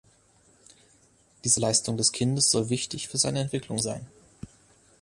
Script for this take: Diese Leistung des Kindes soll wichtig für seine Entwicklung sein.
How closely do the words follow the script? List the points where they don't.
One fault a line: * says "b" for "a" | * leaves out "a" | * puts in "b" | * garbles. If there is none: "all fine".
all fine